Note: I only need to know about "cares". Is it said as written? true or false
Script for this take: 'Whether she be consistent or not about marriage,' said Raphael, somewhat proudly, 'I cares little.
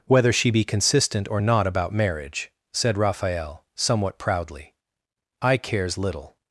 true